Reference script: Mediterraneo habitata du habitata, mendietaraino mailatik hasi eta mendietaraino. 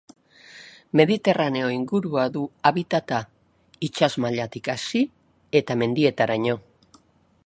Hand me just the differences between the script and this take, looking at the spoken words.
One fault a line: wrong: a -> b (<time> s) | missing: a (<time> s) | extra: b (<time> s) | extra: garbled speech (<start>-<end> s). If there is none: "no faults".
wrong: habitata -> ingurua (1.7 s)
wrong: mendietaraino -> itsas (3.9 s)